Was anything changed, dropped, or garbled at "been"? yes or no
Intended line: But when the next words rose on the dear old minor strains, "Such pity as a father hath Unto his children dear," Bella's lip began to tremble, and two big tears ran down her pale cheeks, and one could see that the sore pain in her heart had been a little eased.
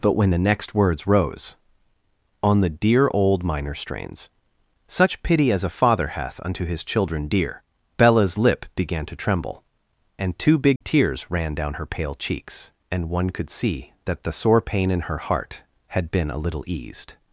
no